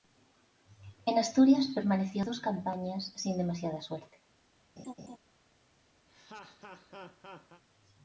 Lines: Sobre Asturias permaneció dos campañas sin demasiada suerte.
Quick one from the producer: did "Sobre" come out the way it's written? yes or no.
no